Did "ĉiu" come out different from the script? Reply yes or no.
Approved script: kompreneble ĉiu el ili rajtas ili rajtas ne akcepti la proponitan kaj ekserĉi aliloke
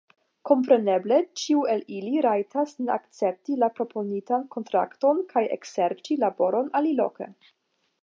no